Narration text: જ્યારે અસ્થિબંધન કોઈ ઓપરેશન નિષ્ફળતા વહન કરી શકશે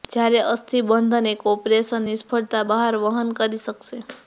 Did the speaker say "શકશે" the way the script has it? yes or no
yes